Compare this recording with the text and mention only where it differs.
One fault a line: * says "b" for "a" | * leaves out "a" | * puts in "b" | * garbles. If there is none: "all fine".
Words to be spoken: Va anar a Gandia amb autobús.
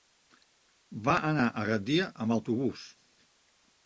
all fine